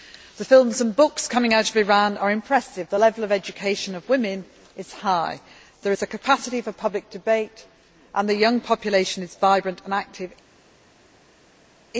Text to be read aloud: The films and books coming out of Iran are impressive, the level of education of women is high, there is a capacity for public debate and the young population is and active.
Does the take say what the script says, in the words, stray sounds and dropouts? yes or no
no